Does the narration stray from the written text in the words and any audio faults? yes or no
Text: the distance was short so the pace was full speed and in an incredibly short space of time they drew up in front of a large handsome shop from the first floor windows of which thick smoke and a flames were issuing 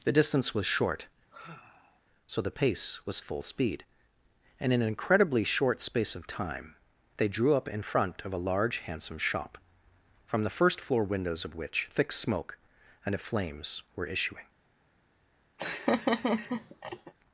yes